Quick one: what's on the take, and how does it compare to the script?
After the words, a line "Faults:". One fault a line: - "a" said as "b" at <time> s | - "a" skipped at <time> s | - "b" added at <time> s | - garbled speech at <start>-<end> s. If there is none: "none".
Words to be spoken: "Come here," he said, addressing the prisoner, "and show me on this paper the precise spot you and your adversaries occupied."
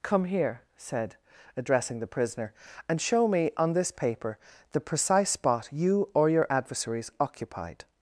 "Come here," said, addressing the prisoner, "and show me on this paper the precise spot you or your adversaries occupied."
Faults:
- "he" skipped at 0.6 s
- "and" said as "or" at 6.1 s